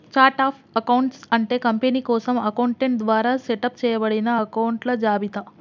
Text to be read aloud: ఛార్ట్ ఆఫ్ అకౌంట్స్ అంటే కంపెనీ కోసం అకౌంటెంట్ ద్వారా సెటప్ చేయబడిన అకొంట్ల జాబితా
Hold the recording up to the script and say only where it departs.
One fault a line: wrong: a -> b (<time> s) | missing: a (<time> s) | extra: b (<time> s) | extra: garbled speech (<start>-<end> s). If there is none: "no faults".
no faults